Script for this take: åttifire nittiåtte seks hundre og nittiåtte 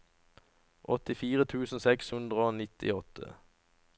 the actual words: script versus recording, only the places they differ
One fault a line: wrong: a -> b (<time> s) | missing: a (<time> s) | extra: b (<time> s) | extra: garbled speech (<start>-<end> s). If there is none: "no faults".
wrong: nittiåtte -> tusen (1.5 s)